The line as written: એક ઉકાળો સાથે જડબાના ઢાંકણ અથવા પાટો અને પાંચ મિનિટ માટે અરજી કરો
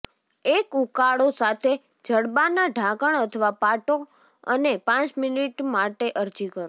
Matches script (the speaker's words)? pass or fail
pass